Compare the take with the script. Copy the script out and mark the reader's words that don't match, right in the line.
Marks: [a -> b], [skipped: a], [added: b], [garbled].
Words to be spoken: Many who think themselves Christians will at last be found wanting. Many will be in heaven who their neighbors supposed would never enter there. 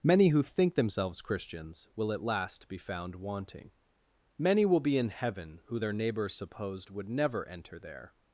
Many who think themselves Christians will at last be found wanting. Many will be in heaven who their neighbors supposed would never enter there.